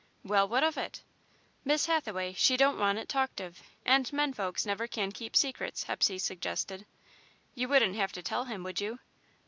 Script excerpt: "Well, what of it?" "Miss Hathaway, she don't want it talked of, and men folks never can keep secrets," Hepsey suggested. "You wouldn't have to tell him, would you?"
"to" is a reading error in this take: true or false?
false